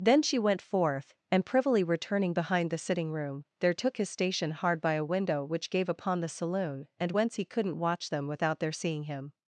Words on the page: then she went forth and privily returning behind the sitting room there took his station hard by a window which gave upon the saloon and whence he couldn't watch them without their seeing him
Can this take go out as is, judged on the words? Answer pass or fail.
pass